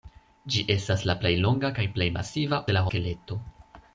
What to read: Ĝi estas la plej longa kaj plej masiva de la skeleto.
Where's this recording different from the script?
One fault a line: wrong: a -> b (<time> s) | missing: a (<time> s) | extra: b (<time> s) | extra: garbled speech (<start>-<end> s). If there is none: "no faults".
no faults